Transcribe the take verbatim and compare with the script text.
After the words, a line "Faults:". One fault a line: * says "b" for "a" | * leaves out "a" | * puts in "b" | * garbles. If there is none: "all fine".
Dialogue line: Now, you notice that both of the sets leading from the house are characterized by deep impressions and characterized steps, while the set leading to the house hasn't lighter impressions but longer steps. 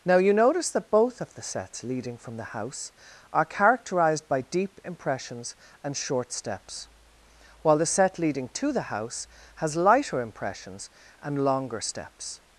Now, you notice that both of the sets leading from the house are characterized by deep impressions and short steps, while the set leading to the house has lighter impressions and longer steps.
Faults:
* says "short" for "characterized"
* says "has" for "hasn't"
* says "and" for "but"